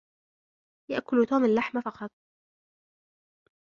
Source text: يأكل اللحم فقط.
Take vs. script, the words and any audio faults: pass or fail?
fail